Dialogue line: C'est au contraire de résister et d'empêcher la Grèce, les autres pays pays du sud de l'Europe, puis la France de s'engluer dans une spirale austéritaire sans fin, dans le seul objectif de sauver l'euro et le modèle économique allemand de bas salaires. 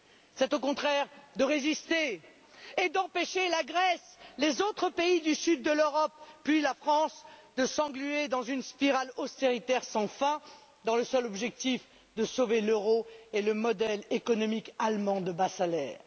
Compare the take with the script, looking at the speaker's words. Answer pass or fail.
fail